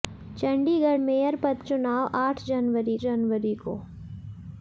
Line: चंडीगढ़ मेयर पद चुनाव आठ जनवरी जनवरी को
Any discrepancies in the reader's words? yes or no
no